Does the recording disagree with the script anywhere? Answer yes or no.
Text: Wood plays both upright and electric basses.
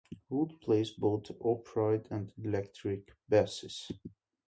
no